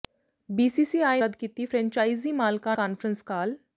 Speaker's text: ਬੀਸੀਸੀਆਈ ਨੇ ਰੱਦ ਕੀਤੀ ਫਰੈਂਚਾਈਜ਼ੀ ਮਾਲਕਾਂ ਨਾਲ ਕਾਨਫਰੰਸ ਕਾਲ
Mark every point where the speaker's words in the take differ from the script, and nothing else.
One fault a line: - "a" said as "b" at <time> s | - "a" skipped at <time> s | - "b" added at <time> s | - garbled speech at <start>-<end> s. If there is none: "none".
- "ਨੇ" skipped at 1.2 s
- "ਨਾਲ" skipped at 2.8 s